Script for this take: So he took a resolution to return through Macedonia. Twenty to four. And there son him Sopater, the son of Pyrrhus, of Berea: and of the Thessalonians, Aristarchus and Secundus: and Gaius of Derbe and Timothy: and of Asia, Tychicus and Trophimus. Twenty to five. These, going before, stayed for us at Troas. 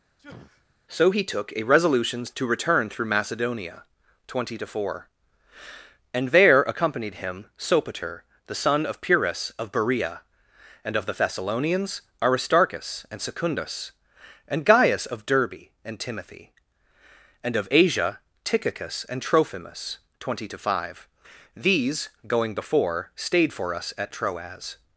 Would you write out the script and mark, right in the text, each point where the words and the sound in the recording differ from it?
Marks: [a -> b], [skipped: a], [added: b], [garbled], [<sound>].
[sneeze] So he took a resolution to return through Macedonia. Twenty to four. And there [son -> accompanied] him Sopater, the son of Pyrrhus, of Berea: and of the Thessalonians, Aristarchus and Secundus: and Gaius of Derbe and Timothy: and of Asia, Tychicus and Trophimus. Twenty to five. These, going before, stayed for us at Troas.